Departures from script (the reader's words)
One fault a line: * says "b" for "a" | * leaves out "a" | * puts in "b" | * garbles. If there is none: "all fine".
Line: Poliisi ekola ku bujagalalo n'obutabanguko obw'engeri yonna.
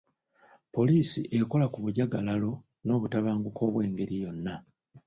all fine